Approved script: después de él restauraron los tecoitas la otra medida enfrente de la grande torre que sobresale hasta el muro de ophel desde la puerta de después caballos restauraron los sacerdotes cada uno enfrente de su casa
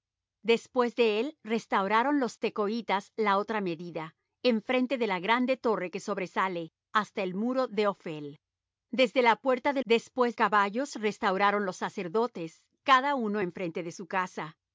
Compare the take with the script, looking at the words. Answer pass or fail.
pass